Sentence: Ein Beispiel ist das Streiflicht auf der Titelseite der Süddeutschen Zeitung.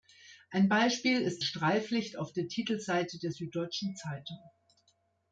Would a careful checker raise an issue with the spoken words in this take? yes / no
yes